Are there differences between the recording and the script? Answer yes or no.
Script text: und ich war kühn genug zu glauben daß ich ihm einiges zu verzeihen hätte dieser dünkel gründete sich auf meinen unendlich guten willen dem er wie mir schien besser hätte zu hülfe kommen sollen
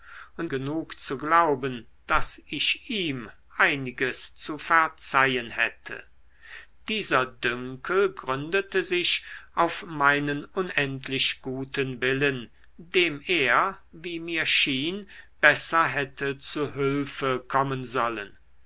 yes